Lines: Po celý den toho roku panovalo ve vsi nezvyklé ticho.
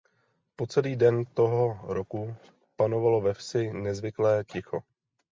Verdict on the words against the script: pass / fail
pass